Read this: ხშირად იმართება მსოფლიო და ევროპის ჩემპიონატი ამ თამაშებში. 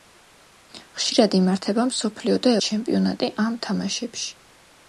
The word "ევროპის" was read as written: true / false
false